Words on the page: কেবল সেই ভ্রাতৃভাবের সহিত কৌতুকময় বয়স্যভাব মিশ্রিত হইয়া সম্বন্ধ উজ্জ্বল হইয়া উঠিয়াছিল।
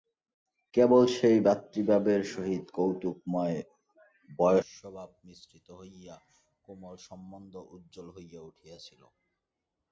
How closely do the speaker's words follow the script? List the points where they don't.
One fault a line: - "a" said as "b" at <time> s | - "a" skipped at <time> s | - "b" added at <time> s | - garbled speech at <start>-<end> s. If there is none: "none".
- "কোমল" added at 6.6 s